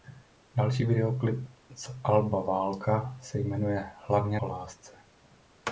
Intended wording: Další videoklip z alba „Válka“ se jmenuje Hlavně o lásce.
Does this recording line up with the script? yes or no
yes